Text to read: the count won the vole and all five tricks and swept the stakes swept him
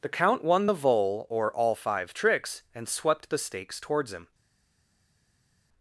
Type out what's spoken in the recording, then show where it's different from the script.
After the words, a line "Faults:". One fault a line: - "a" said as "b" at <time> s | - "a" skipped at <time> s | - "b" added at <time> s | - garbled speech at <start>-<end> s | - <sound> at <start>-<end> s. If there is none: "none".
the count won the vole or all five tricks and swept the stakes towards him
Faults:
- "and" said as "or" at 1.3 s
- "swept" said as "towards" at 3.8 s